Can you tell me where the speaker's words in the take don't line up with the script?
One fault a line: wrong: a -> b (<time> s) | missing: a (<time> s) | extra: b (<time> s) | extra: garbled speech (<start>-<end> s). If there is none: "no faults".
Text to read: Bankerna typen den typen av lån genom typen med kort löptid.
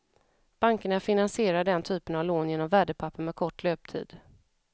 wrong: typen -> finansierar (1.0 s)
wrong: typen -> värdepapper (2.7 s)